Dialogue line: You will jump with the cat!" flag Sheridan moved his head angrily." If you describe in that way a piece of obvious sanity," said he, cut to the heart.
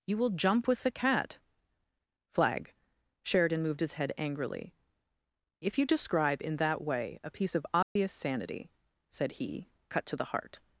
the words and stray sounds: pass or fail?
fail